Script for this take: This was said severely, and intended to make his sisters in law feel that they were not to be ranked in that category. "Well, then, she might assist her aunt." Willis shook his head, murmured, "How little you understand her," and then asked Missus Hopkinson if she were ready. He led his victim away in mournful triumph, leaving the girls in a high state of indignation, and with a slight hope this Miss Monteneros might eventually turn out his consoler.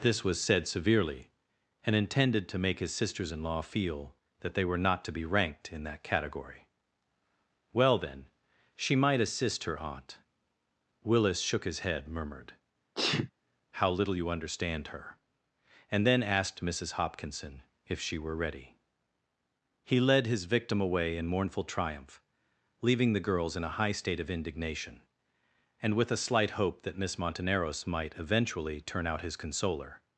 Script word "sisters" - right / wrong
right